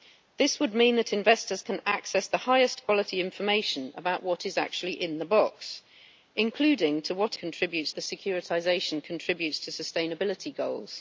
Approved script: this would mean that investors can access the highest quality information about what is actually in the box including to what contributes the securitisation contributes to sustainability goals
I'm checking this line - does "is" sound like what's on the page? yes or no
yes